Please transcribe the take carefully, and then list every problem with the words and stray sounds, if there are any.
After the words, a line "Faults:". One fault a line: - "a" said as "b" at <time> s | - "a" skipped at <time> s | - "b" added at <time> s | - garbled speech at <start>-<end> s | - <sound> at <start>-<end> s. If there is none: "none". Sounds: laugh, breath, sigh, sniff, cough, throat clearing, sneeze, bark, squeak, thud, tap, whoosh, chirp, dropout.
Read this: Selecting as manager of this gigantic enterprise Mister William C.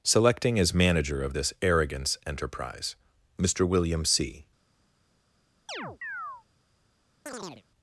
Selecting as manager of this arrogance enterprise Mister William C.
Faults:
- "gigantic" said as "arrogance" at 1.6 s
- chirp at 5.7-6.4 s
- chirp at 7.3-7.6 s